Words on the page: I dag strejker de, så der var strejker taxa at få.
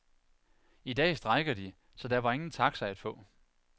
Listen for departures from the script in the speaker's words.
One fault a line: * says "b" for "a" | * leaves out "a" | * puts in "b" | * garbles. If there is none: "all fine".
* says "ingen" for "strejker"